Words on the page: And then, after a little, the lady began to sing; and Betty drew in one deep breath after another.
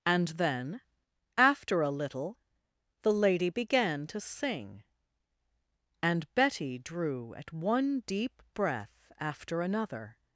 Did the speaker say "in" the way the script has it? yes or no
no